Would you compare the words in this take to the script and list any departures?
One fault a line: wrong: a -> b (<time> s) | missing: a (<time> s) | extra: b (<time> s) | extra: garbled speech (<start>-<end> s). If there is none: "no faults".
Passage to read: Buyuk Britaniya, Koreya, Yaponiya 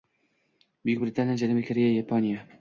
extra: Janubiy (1.4 s)